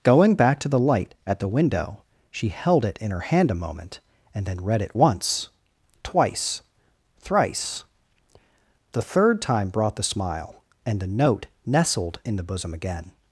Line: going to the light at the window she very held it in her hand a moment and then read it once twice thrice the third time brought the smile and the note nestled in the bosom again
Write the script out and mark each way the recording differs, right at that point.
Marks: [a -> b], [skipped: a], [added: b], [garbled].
going [added: back] to the light at the window she [skipped: very] held it in her hand a moment and then read it once twice thrice the third time brought the smile and the note nestled in the bosom again